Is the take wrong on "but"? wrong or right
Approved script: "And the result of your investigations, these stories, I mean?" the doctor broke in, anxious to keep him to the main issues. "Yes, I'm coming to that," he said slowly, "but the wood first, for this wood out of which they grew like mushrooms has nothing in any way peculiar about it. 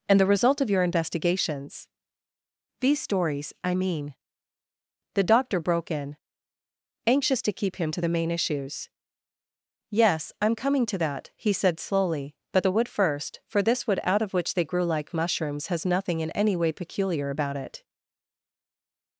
right